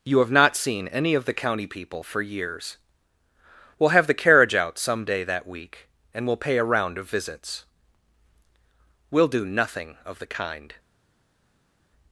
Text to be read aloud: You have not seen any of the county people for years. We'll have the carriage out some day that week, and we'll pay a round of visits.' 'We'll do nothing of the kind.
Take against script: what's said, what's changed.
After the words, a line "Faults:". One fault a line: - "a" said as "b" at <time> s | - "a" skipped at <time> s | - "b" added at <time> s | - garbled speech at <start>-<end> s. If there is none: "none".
You have not seen any of the county people for years. We'll have the carriage out some day that week, and we'll pay a round of visits.' 'We'll do nothing of the kind.
Faults:
none